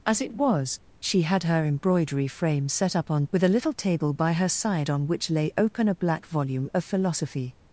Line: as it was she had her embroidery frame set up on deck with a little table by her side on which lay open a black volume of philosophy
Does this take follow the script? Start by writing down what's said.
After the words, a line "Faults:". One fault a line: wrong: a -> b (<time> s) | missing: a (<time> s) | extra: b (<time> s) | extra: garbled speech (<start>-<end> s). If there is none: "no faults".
as it was she had her embroidery frame set up on with a little table by her side on which lay open a black volume of philosophy
Faults:
missing: deck (3.2 s)